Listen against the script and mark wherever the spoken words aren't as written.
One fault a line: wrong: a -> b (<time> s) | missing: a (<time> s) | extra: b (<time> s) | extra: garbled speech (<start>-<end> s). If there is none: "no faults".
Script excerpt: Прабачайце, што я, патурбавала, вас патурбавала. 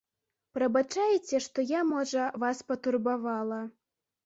wrong: патурбавала -> можа (1.9 s)